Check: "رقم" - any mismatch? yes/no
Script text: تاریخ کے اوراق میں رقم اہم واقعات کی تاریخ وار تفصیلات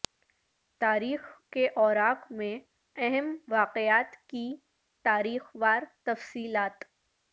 yes